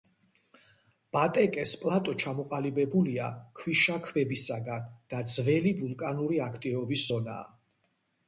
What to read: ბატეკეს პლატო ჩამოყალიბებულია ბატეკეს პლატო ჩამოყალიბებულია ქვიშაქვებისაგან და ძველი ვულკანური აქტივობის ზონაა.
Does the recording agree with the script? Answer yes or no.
no